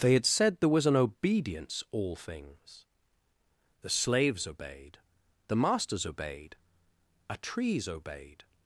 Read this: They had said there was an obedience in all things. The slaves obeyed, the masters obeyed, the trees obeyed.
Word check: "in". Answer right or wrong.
wrong